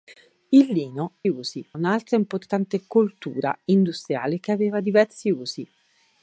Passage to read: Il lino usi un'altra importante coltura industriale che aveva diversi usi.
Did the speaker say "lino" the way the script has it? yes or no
yes